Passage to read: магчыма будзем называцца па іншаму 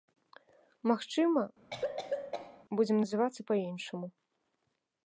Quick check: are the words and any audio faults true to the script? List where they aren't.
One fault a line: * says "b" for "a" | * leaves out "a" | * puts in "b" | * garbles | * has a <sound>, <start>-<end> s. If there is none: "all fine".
* has a cough, 1.7-2.6 s